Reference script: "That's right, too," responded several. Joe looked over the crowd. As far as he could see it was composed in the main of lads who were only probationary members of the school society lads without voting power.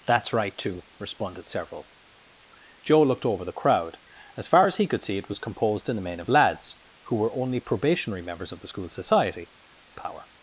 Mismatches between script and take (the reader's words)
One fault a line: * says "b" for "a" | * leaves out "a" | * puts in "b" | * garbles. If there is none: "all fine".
* leaves out "lads without voting"